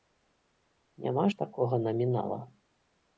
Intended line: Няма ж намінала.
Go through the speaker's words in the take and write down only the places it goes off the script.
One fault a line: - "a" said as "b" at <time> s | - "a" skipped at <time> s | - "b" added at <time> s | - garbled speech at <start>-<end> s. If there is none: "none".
- "такога" added at 1.4 s